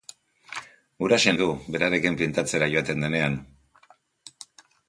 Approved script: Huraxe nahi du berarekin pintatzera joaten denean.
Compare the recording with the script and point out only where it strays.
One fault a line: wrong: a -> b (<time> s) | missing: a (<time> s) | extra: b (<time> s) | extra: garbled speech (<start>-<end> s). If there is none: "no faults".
missing: nahi (1.3 s)